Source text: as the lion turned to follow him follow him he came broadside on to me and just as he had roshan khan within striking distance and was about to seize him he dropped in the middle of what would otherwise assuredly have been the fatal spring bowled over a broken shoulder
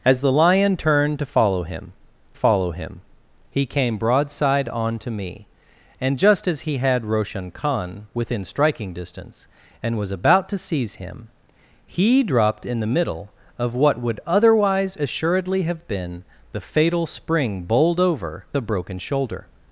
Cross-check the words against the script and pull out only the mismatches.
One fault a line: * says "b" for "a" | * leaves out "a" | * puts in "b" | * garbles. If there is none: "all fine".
all fine